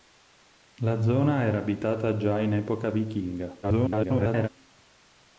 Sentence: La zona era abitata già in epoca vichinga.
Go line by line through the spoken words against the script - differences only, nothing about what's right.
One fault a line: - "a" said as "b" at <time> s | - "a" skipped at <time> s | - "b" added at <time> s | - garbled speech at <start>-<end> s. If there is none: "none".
- garbled speech at 3.6-4.5 s